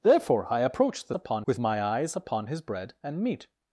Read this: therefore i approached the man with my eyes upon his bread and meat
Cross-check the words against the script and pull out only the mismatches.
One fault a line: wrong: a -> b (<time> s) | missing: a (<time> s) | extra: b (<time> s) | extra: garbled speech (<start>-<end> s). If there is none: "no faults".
wrong: man -> upon (1.1 s)